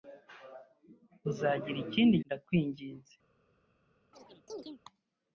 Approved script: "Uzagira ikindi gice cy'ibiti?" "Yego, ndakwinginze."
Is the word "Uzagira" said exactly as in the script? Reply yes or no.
yes